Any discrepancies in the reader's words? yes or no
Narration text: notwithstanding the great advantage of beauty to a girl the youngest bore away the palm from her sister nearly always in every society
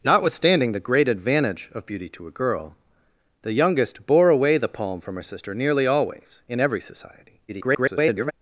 yes